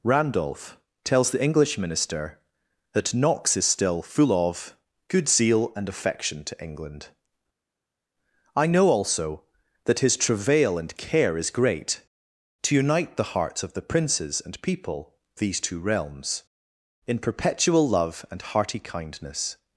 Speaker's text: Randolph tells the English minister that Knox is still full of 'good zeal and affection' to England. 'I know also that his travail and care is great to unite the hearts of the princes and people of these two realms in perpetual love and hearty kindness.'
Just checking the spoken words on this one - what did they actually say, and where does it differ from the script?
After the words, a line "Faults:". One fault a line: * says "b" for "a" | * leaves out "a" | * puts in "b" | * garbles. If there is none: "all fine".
Randolph tells the English minister that Knox is still full of 'good zeal and affection' to England. 'I know also that his travail and care is great to unite the hearts of the princes and people these two realms in perpetual love and hearty kindness.'
Faults:
* leaves out "of"